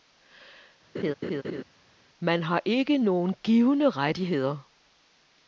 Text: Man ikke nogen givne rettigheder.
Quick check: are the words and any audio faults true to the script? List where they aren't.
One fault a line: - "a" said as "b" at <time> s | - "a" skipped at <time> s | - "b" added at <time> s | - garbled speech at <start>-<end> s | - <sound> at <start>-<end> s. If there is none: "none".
- laugh at 0.9-1.6 s
- "har" added at 2.4 s